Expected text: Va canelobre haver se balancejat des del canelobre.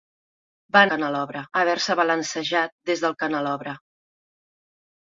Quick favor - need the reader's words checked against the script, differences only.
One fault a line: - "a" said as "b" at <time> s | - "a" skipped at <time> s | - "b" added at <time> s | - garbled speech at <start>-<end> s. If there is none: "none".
none